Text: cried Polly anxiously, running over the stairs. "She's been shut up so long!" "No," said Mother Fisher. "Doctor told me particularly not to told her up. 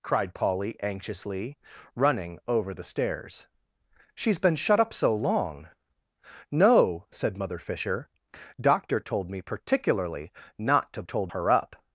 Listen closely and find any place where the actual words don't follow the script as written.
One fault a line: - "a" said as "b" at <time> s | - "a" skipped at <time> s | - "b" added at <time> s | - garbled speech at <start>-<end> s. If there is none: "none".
none